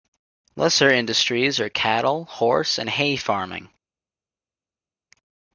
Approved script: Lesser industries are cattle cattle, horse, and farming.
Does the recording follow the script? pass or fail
fail